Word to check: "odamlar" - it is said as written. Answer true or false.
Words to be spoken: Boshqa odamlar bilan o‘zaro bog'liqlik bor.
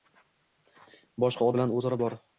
false